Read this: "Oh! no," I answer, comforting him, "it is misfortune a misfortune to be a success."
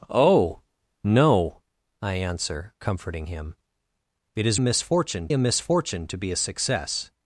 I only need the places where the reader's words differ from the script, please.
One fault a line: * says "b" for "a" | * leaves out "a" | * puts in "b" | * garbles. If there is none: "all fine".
all fine